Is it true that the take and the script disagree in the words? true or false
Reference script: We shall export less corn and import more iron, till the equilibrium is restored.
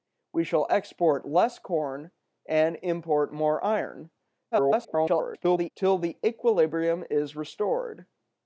true